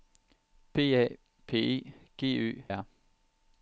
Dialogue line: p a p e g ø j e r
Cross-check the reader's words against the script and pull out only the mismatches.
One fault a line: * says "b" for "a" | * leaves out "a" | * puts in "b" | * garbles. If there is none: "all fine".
* leaves out "j e"